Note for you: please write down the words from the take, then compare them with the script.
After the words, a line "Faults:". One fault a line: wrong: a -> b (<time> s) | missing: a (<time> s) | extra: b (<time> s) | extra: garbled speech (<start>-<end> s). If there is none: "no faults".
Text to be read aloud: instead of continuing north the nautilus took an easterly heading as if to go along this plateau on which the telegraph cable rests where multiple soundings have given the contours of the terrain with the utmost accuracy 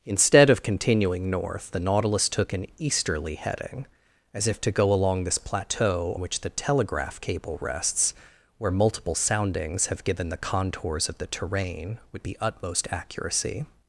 instead of continuing north the nautilus took an easterly heading as if to go along this plateau which the telegraph cable rests where multiple soundings have given the contours of the terrain with the utmost accuracy
Faults:
missing: on (6.2 s)